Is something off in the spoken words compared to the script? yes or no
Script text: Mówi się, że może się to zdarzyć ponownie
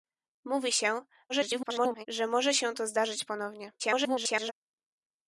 yes